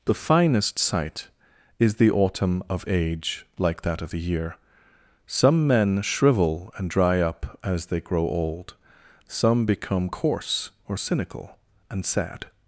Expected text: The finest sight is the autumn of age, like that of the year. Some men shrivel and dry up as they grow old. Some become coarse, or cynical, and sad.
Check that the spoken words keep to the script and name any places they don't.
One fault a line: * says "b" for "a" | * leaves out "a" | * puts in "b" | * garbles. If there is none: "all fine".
all fine